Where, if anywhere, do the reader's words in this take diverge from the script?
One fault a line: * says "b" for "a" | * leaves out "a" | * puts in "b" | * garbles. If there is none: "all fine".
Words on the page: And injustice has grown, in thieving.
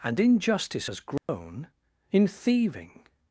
all fine